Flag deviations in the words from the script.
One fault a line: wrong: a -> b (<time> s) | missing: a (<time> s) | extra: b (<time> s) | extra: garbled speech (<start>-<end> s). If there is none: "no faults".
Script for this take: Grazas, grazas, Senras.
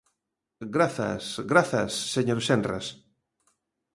extra: señor (2.1 s)